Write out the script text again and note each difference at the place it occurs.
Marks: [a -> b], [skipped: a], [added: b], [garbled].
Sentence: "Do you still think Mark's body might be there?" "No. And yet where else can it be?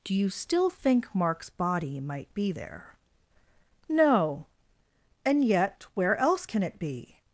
"Do you still think Mark's body might be there?" "No. And yet where else can it be?